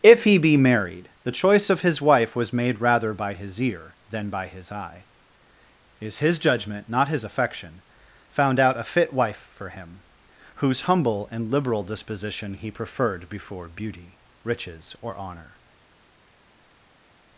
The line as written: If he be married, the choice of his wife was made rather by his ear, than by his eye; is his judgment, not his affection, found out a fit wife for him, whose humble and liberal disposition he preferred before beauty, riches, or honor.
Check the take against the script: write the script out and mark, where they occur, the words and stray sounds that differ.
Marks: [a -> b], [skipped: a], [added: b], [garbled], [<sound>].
If he be married, the choice of his wife was made rather by his ear, than by his eye; is his judgment, not his affection, found out a fit wife for him, whose humble and liberal disposition he preferred before beauty, riches, or honor.